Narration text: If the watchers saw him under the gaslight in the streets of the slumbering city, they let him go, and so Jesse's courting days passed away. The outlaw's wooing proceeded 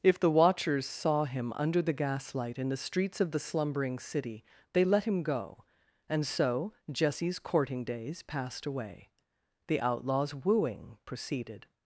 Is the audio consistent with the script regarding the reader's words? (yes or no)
yes